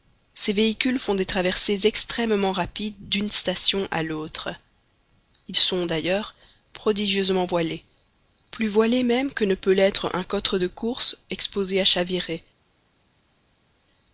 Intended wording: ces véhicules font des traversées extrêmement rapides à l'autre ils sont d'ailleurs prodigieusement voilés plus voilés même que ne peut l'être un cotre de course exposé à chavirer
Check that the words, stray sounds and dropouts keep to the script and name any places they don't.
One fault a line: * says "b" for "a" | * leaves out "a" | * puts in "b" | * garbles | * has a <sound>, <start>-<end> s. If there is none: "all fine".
* puts in "d'une station"